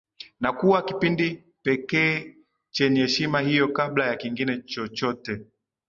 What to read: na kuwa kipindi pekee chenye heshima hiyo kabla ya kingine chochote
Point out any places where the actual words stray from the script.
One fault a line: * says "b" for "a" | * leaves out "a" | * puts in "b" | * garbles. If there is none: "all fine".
all fine